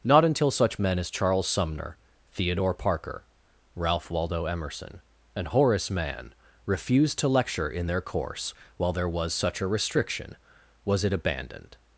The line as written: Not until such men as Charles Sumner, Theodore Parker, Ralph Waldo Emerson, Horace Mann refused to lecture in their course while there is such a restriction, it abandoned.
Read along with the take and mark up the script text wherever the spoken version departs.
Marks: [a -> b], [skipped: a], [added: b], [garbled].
Not until such men as Charles Sumner, Theodore Parker, Ralph Waldo Emerson, [added: and] Horace Mann refused to lecture in their course while there [is -> was] such a restriction, [added: was] it abandoned.